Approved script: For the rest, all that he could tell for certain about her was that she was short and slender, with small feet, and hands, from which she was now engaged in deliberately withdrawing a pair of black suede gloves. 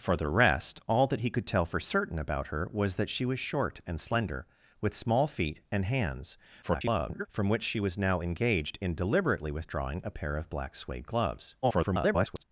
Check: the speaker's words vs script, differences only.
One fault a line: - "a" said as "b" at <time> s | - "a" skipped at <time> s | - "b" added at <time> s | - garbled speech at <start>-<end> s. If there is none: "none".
- garbled speech at 6.6-7.3 s
- garbled speech at 11.6-12.4 s